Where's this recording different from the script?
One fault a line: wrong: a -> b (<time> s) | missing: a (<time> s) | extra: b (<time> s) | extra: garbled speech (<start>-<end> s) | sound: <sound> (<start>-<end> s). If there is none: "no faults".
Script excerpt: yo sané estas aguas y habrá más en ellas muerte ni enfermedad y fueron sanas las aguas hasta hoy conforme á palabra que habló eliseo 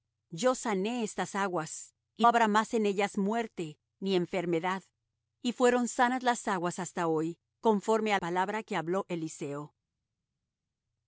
no faults